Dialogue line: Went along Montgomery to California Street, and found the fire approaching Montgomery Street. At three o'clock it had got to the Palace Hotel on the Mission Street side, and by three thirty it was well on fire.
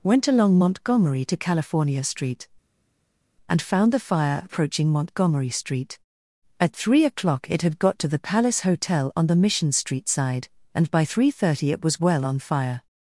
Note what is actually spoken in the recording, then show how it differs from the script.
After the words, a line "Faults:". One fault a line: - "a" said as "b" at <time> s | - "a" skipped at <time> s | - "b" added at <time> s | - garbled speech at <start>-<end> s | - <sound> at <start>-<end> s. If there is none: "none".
Went along Montgomery to California Street, and found the fire approaching Montgomery Street. At three o'clock it had got to the Palace Hotel on the Mission Street side, and by three thirty it was well on fire.
Faults:
none